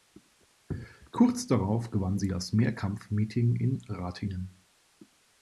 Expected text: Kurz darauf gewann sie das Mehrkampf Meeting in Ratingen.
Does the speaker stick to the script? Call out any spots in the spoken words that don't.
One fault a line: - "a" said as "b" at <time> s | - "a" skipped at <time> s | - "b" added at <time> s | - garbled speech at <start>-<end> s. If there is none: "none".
none